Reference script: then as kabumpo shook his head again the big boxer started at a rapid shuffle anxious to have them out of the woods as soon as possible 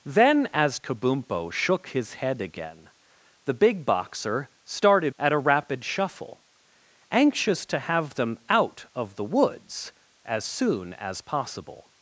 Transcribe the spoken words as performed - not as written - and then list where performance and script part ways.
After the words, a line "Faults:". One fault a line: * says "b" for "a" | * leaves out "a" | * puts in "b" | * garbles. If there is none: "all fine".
then as kabumpo shook his head again the big boxer started at a rapid shuffle anxious to have them out of the woods as soon as possible
Faults:
all fine